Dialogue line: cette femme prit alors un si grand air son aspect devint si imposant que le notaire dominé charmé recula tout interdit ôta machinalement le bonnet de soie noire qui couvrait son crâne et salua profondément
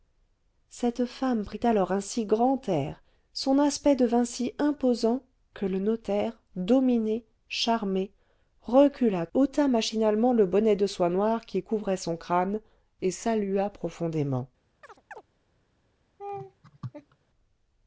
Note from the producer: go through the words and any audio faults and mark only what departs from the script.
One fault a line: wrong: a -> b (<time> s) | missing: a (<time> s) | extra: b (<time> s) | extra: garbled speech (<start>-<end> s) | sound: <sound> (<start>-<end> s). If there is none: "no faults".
missing: tout interdit (9.3 s)
sound: chirp (14.8-15.2 s)
sound: laugh (16.2-17.2 s)